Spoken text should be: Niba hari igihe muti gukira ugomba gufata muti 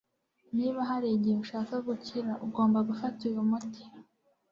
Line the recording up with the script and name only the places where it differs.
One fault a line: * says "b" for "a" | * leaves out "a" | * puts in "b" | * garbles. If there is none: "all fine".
* says "ushaka" for "muti"
* puts in "uyu"